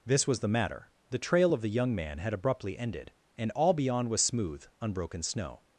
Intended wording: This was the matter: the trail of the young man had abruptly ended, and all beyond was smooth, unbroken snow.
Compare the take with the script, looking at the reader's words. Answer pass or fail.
pass